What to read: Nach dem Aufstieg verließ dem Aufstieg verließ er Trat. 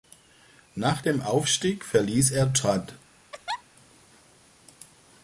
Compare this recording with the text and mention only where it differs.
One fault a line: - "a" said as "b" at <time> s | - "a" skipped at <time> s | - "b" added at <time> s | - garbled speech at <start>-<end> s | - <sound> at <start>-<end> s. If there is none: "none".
- "dem Aufstieg verließ" skipped at 2.3 s
- laugh at 3.3-3.6 s